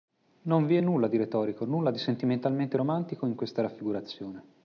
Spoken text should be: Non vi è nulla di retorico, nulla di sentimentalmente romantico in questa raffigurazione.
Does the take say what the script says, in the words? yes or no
yes